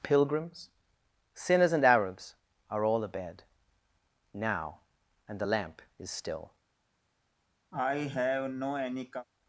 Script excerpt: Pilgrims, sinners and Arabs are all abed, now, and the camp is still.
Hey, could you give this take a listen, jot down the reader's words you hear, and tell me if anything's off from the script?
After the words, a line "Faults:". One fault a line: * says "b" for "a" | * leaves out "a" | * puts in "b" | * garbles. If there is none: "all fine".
Pilgrims, sinners and Arabs are all abed, now, and the lamp is still.
Faults:
* says "lamp" for "camp"